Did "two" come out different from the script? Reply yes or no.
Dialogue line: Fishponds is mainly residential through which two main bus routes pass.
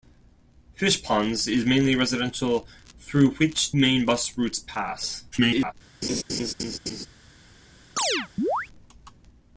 yes